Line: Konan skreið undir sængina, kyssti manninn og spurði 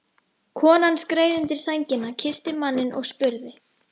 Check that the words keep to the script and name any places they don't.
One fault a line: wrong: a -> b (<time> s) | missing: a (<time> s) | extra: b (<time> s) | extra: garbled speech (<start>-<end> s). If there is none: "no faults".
no faults